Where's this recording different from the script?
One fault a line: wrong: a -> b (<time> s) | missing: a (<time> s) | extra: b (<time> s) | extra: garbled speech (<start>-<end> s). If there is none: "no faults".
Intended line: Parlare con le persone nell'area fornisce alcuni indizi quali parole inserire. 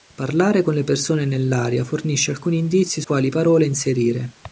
no faults